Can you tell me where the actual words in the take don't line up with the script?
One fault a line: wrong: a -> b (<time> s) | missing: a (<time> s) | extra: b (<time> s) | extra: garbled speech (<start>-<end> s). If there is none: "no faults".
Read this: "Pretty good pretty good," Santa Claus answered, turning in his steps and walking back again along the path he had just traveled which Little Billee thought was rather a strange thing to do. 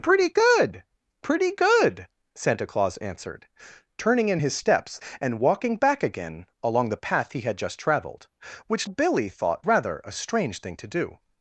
missing: Little (8.9 s)
missing: was (9.7 s)